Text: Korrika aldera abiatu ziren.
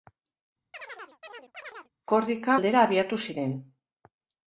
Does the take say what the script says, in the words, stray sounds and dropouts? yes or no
no